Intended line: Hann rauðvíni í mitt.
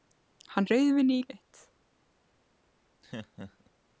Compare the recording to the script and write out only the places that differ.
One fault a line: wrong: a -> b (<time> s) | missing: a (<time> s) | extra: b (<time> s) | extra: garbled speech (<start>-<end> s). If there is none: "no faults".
no faults